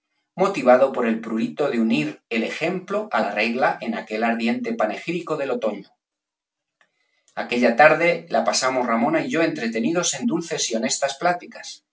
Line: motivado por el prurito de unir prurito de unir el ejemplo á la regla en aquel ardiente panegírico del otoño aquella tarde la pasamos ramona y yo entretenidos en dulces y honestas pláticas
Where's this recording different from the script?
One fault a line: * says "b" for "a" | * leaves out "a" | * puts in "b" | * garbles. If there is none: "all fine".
* leaves out "prurito de unir"